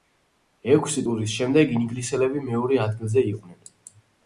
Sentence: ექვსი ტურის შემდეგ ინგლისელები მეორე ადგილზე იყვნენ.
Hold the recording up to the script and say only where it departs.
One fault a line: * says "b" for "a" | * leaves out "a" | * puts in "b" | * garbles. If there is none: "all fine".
all fine